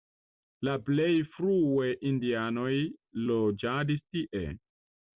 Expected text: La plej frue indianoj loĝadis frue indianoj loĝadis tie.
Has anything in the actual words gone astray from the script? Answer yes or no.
yes